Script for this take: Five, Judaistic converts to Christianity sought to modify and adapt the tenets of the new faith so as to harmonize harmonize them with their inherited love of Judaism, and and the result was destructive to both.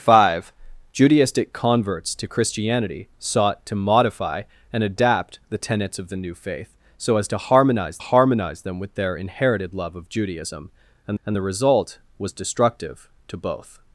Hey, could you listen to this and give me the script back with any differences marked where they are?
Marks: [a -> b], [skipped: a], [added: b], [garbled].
Five, Judaistic converts to Christianity sought to modify and adapt the tenets of the new faith so as to harmonize harmonize them with their inherited love of Judaism, and and the result was destructive to both.